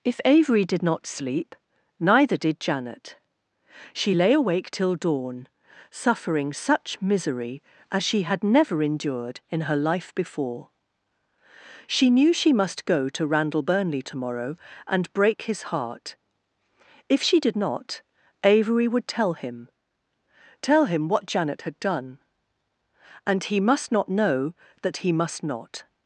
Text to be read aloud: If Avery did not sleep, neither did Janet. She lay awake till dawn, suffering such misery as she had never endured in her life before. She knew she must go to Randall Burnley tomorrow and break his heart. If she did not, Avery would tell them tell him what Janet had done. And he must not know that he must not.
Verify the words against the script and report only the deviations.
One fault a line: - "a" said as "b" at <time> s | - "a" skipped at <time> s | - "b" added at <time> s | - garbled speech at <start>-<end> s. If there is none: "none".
- "them" said as "him" at 19.3 s